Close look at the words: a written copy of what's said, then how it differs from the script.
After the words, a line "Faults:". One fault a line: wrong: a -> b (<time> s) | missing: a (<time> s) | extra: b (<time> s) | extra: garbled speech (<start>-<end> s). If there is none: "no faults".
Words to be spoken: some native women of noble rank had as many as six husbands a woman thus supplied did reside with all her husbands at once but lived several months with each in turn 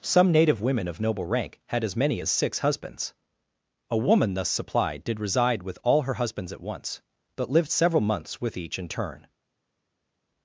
some native women of noble rank had as many as six husbands a woman thus supplied did reside with all her husbands at once but lived several months with each in turn
Faults:
no faults